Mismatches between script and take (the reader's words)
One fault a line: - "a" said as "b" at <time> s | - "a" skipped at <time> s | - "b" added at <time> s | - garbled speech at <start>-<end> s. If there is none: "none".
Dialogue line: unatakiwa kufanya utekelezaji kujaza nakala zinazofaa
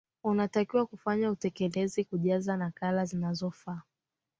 none